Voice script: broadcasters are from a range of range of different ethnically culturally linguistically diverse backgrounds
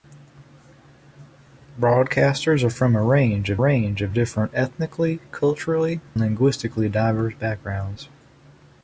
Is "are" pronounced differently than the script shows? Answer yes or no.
no